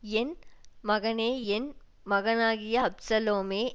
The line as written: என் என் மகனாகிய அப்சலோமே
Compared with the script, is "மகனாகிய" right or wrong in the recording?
right